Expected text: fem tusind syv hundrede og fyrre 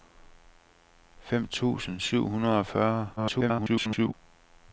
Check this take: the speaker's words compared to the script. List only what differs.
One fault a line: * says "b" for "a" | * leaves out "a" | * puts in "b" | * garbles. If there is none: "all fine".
* garbles